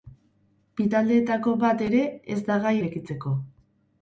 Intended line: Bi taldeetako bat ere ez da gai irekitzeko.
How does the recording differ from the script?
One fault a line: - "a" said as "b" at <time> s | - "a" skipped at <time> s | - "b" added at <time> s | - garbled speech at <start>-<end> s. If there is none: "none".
none